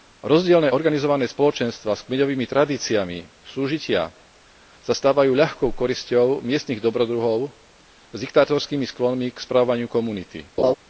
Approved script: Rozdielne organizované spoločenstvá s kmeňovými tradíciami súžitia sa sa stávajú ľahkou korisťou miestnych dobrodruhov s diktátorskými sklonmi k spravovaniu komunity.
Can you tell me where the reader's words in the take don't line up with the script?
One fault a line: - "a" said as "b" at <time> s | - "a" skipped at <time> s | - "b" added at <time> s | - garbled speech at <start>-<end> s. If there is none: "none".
- "sa" skipped at 4.9 s